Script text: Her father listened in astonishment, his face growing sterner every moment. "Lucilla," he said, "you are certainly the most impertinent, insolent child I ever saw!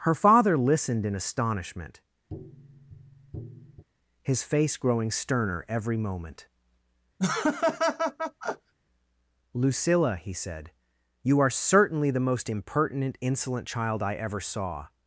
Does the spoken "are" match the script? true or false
true